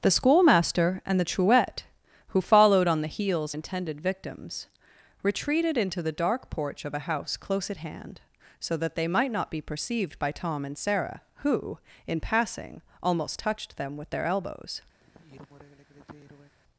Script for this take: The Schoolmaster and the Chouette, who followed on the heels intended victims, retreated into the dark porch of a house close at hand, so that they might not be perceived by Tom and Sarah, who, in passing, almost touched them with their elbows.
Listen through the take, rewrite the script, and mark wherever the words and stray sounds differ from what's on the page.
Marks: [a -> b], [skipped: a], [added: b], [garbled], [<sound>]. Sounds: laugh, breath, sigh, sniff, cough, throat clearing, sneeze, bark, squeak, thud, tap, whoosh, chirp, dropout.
The Schoolmaster and the Chouette, who followed on the heels intended victims, retreated into the dark porch of a house close at hand, so that they might not be perceived by Tom and Sarah, who, in passing, almost touched them with their elbows. [sigh]